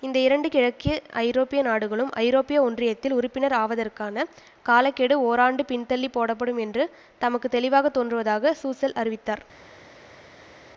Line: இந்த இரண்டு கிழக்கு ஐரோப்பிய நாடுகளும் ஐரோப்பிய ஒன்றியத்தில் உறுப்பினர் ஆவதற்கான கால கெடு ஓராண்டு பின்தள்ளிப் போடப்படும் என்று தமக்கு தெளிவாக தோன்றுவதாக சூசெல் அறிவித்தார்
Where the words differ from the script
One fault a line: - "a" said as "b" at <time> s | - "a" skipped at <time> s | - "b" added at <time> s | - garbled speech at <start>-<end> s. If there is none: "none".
none